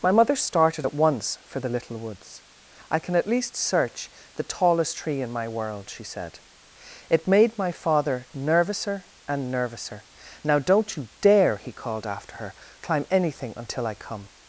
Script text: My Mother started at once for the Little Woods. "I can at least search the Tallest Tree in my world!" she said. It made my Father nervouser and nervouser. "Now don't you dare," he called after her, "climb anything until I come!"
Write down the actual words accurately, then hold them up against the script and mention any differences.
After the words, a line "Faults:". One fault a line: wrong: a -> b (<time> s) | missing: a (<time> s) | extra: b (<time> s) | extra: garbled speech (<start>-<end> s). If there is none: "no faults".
My Mother started at once for the Little Woods. "I can at least search the Tallest Tree in my world!" she said. It made my Father nervouser and nervouser. "Now don't you dare," he called after her, "climb anything until I come!"
Faults:
no faults